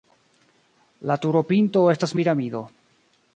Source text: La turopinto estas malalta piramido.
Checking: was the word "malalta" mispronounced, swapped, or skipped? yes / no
yes